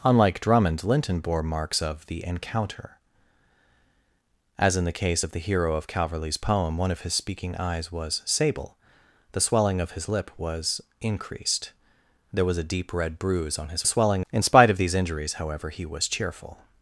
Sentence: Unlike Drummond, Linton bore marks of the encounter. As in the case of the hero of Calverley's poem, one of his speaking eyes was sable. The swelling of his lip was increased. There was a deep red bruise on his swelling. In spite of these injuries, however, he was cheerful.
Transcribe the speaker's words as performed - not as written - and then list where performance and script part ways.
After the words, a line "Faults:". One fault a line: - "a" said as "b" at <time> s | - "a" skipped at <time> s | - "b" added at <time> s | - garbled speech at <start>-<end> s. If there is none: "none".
Unlike Drummond, Linton bore marks of the encounter. As in the case of the hero of Calverley's poem, one of his speaking eyes was sable. The swelling of his lip was increased. There was a deep red bruise on his swelling. In spite of these injuries, however, he was cheerful.
Faults:
none